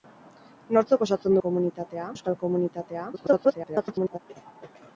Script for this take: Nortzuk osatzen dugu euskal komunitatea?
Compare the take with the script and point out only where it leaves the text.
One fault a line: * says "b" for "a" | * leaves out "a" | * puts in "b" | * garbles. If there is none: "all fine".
* says "komunitatea" for "dugu"
* garbles